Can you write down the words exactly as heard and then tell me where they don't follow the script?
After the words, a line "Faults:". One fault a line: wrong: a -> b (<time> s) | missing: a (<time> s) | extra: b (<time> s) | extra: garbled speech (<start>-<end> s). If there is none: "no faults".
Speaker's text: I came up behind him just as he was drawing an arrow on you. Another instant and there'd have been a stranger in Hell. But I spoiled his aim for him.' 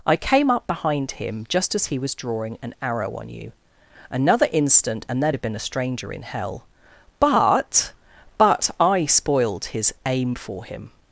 I came up behind him just as he was drawing an arrow on you. Another instant and there'd have been a stranger in Hell. But But I spoiled his aim for him.'
Faults:
extra: But (8.4 s)